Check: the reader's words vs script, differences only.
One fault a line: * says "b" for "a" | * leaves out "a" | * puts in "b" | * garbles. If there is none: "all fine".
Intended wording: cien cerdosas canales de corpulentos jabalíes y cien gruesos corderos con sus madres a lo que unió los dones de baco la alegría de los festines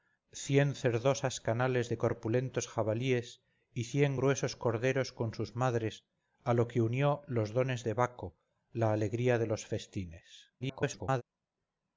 * garbles